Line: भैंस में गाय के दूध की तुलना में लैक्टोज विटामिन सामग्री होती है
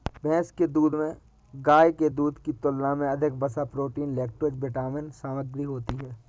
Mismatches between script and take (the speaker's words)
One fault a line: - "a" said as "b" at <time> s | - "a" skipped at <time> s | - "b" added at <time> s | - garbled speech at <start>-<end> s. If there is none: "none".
- "के दूध" added at 0.5 s
- "अधिक वसा प्रोटीन" added at 3.1 s